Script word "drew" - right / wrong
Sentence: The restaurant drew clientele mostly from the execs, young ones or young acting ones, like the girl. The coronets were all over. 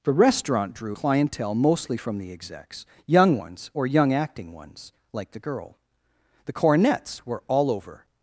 right